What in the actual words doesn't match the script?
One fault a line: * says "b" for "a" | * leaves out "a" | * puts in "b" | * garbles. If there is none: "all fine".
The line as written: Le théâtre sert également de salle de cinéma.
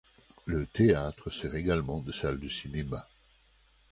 all fine